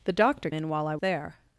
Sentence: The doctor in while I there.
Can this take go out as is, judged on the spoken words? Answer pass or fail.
pass